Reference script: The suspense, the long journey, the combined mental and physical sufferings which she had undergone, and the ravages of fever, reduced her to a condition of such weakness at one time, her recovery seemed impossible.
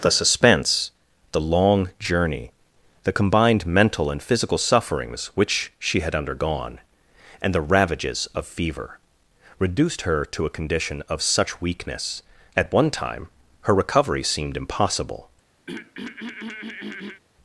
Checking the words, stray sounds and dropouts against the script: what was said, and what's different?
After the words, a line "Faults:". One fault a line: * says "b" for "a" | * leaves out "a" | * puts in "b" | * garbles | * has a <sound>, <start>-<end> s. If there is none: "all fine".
The suspense, the long journey, the combined mental and physical sufferings which she had undergone, and the ravages of fever, reduced her to a condition of such weakness at one time, her recovery seemed impossible.
Faults:
* has a throat clearing, 15.7-17.2 s